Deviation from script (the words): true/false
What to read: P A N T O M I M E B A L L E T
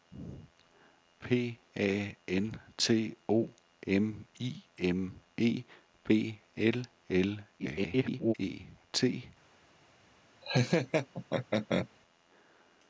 true